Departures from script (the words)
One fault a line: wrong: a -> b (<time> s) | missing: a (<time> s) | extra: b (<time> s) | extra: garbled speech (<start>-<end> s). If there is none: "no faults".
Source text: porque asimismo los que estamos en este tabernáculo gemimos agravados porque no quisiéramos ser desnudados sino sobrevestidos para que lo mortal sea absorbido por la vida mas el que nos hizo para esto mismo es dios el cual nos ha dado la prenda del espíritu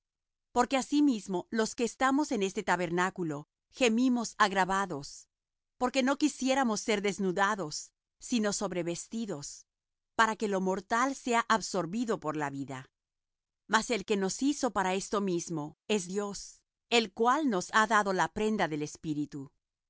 no faults